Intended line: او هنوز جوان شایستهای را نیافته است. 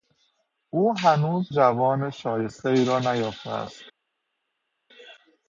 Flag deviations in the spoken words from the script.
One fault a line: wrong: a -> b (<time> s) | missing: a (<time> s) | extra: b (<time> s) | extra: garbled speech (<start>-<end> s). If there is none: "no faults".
no faults